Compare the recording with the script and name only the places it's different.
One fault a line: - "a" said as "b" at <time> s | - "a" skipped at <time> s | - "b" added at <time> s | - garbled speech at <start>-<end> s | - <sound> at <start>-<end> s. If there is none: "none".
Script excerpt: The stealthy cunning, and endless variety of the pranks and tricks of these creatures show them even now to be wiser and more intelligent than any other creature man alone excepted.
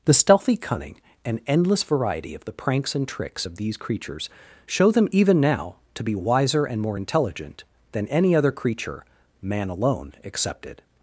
none